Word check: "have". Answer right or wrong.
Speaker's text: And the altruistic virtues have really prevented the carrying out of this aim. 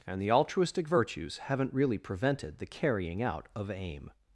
wrong